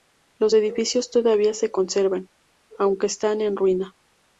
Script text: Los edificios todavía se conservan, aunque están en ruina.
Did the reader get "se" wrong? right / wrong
right